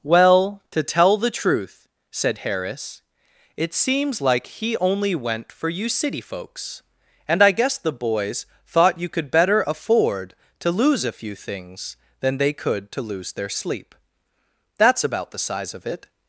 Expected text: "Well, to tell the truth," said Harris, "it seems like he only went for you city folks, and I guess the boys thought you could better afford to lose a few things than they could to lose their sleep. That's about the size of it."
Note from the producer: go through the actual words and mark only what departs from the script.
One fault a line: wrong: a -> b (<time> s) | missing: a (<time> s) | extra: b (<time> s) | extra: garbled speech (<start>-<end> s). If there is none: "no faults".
no faults